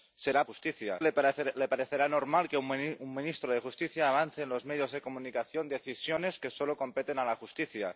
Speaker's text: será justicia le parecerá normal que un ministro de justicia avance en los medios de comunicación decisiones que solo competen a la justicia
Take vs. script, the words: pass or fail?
pass